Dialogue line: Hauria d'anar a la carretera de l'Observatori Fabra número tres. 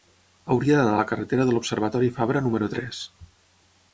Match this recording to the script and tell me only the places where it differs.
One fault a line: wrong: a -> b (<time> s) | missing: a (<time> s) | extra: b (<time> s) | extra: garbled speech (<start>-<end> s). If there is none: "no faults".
no faults